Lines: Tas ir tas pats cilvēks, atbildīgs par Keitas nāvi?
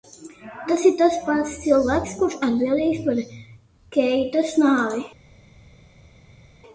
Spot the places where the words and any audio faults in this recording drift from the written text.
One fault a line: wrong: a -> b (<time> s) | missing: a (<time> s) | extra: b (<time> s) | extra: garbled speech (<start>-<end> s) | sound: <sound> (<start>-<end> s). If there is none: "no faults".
extra: kurš (2.2 s)